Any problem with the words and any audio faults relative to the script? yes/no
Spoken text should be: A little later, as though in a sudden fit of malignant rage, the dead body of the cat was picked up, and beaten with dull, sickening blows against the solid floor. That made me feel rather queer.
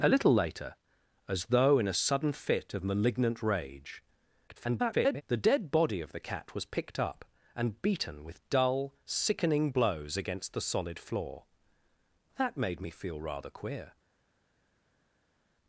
yes